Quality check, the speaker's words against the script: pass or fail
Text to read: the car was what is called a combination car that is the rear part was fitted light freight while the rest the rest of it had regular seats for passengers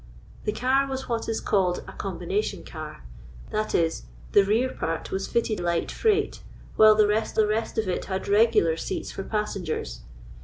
pass